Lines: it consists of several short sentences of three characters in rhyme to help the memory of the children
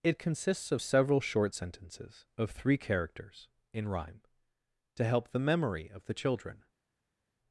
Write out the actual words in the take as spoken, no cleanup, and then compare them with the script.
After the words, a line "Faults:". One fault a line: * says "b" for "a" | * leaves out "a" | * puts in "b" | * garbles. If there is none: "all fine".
it consists of several short sentences of three characters in rhyme to help the memory of the children
Faults:
all fine